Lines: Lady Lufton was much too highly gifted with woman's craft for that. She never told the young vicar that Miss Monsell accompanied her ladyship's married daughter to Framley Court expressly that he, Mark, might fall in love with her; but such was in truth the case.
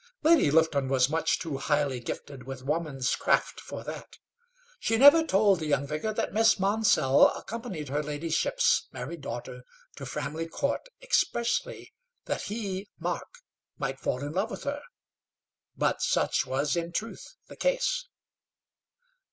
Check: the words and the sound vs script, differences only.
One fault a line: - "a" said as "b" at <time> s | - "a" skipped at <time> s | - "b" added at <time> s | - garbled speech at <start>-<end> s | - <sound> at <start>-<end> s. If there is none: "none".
none